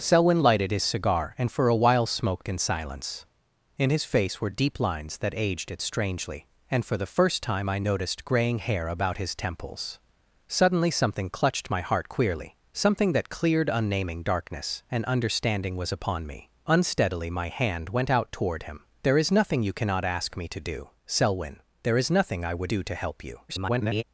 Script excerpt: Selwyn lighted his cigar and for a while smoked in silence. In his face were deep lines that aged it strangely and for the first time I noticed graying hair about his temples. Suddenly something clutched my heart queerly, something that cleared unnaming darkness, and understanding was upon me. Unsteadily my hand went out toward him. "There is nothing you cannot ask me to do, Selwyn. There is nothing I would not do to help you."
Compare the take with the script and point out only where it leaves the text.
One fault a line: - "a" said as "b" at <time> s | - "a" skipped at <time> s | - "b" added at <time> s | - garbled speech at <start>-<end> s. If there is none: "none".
- "not" skipped at 22.7 s
- garbled speech at 23.5-24.0 s